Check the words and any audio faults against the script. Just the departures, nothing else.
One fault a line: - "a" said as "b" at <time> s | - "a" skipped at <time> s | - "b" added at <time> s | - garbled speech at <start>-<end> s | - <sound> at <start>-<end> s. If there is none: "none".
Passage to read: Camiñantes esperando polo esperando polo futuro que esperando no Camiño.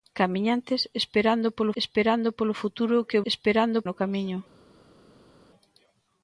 none